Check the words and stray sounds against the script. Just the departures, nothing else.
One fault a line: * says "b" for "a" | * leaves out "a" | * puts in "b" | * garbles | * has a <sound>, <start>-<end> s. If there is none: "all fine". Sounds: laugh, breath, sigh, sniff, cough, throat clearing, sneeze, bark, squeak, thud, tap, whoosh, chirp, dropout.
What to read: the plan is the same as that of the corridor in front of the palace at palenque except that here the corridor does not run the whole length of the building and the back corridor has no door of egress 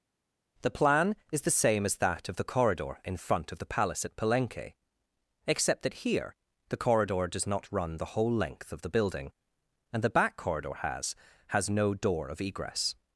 * puts in "has"